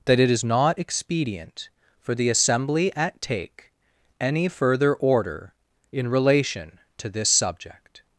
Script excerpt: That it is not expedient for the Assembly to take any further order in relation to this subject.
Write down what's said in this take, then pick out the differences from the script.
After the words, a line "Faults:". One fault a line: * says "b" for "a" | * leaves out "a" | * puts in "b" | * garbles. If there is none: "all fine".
That it is not expedient for the Assembly at take any further order in relation to this subject.
Faults:
* says "at" for "to"